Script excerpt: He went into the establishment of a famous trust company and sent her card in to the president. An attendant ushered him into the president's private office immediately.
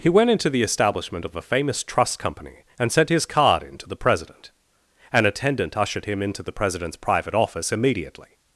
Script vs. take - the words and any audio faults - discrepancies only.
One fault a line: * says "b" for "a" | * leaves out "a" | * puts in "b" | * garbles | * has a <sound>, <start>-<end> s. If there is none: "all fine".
* says "his" for "her"